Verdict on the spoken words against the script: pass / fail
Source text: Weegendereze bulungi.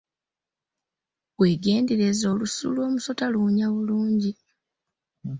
fail